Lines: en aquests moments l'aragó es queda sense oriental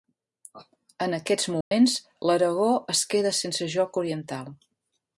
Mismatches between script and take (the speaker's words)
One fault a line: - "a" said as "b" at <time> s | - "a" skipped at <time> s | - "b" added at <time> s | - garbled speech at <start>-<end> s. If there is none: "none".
- "joc" added at 3.8 s